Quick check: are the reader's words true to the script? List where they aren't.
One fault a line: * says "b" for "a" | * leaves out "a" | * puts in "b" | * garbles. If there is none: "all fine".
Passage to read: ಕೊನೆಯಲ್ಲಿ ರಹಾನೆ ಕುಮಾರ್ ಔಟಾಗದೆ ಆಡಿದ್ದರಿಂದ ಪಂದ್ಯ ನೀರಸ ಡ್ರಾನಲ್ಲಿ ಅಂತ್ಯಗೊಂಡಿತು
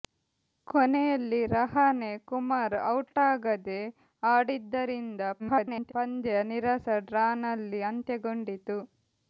* garbles